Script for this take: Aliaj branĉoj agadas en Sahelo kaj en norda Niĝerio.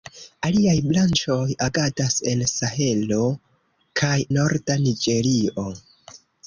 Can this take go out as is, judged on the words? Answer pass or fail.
fail